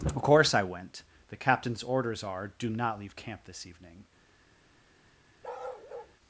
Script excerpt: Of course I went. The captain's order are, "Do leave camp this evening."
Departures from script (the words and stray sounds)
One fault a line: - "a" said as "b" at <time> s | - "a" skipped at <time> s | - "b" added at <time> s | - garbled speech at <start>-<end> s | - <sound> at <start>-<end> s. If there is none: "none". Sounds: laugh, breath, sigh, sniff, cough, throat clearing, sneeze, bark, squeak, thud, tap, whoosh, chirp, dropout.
- "order" said as "orders" at 1.8 s
- "not" added at 2.7 s
- bark at 5.4-6.2 s